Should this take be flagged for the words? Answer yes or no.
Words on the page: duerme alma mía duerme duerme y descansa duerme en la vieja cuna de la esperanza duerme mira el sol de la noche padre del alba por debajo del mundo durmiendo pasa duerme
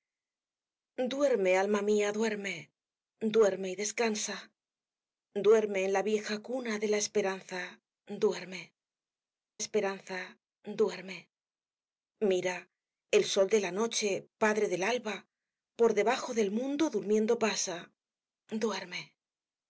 yes